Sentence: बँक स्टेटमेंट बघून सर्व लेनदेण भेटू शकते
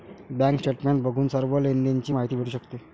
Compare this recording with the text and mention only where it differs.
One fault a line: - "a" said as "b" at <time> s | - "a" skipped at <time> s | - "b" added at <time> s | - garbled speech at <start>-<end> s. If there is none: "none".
- "ची माहिती" added at 2.0 s